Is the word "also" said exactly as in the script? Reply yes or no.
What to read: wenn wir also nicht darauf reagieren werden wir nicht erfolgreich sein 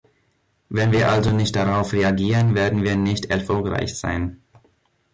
yes